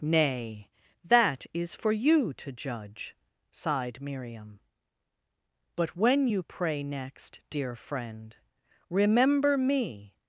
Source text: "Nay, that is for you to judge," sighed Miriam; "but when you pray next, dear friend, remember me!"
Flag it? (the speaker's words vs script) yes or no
no